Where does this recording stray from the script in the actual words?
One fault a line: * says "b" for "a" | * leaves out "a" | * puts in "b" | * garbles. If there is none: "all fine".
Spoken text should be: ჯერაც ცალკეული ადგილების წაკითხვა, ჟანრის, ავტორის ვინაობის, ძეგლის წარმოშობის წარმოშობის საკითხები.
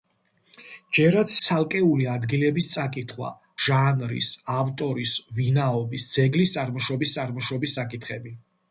all fine